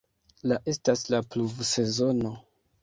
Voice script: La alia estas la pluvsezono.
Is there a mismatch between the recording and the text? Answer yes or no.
yes